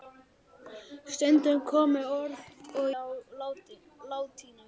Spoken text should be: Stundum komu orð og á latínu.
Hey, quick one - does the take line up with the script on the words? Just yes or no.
yes